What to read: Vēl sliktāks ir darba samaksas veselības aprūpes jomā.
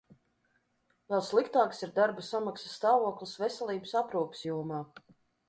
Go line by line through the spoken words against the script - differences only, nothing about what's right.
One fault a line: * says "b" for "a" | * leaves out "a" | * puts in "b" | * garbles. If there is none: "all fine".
* puts in "stāvoklis"